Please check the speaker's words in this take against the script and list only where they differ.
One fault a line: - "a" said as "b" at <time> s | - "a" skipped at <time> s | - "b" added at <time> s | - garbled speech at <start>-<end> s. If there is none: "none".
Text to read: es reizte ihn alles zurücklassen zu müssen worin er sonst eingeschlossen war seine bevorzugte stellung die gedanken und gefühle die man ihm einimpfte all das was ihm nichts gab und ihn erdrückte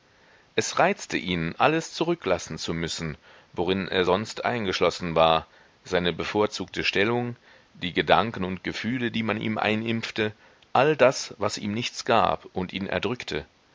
none